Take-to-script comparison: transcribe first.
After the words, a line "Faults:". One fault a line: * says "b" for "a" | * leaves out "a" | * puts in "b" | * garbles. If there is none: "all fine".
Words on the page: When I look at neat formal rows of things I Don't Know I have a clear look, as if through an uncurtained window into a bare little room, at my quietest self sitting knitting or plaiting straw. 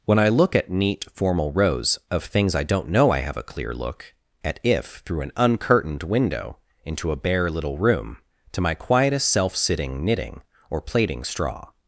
When I look at neat formal rows of things I Don't Know I have a clear look, at if through an uncurtained window into a bare little room, to my quietest self sitting knitting or plaiting straw.
Faults:
* says "at" for "as"
* says "to" for "at"